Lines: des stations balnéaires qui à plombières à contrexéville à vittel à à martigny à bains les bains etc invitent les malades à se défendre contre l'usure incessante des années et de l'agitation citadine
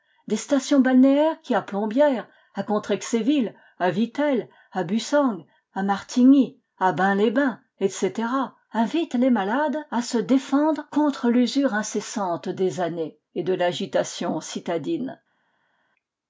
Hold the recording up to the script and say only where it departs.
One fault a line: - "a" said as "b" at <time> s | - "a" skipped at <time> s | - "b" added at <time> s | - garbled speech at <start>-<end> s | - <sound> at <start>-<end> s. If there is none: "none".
- "bussang" added at 4.8 s